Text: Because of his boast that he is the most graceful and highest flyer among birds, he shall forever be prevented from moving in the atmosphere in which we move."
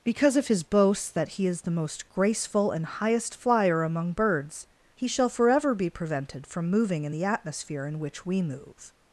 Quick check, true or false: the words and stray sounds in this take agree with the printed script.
true